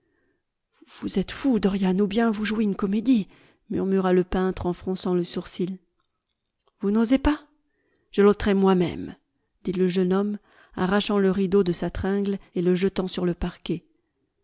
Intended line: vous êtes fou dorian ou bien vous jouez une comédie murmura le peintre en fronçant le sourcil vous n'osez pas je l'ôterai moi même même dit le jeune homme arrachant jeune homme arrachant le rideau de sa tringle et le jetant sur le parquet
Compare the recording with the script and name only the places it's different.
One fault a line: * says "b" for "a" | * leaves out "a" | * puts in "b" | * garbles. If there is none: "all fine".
* leaves out "même"
* leaves out "jeune homme arrachant"